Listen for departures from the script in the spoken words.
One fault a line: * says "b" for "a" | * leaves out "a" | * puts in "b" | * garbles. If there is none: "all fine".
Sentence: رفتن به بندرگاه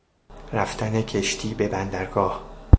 * puts in "کشتی"